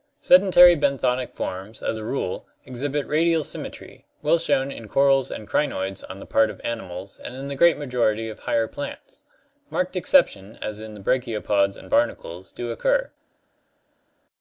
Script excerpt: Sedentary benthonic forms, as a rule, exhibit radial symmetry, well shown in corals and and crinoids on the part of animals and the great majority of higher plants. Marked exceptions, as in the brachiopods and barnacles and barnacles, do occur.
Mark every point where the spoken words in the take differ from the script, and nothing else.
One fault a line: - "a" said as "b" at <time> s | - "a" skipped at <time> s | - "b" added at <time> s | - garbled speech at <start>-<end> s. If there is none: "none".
- "and" skipped at 5.4 s
- "in" added at 7.3 s
- "and barnacles" skipped at 12.5 s